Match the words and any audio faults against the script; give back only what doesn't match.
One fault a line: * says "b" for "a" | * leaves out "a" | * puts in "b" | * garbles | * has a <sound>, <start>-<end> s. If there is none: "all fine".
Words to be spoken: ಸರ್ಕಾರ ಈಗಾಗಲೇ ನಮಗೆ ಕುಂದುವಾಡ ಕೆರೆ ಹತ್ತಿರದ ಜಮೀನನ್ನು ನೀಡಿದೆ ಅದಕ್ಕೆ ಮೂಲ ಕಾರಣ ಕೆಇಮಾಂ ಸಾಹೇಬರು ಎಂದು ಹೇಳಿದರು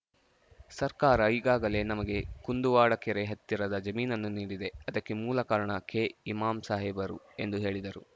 all fine